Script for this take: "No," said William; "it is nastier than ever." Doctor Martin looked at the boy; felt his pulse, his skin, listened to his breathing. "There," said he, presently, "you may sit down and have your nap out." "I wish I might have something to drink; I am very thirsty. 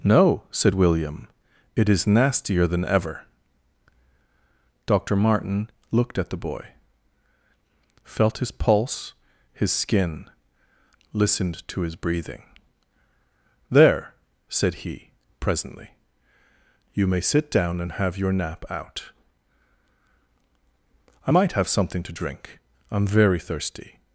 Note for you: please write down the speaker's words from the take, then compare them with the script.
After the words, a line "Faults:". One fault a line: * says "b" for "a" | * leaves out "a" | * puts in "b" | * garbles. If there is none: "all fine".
"No," said William; "it is nastier than ever." Doctor Martin looked at the boy; felt his pulse, his skin, listened to his breathing. "There," said he, presently, "you may sit down and have your nap out." "I might have something to drink; I am very thirsty.
Faults:
* leaves out "wish I"